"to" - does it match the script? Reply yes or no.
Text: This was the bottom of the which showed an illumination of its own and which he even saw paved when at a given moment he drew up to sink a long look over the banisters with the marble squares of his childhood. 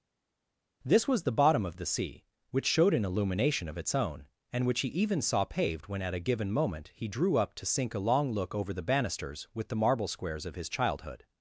yes